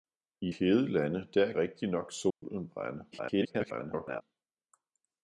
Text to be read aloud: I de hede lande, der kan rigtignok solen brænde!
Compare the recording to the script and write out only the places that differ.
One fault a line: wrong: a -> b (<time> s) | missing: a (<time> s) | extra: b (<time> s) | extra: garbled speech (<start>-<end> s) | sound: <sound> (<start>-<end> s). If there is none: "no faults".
missing: de (0.5 s)
missing: kan (1.5 s)
sound: dropout (2.3-2.4 s)
extra: garbled speech (3.1-4.2 s)